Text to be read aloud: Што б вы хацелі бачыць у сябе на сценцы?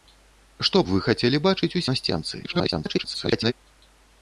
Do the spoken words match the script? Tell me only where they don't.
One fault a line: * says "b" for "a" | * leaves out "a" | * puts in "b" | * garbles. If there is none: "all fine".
* leaves out "сябе"
* garbles